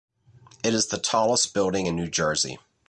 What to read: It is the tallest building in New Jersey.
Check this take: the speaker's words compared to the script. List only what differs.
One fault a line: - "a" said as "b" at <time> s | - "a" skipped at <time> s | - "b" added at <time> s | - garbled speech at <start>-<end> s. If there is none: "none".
none